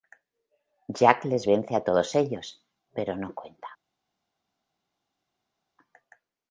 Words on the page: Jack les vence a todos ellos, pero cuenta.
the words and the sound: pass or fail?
fail